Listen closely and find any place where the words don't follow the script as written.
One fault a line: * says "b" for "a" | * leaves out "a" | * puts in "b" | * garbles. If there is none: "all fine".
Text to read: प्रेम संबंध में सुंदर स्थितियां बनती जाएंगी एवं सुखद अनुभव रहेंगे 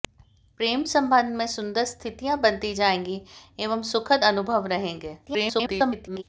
* garbles